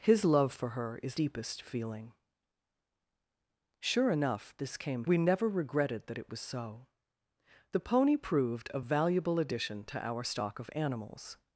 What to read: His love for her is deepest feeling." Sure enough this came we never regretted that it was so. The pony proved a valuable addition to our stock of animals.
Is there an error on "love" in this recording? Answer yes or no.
no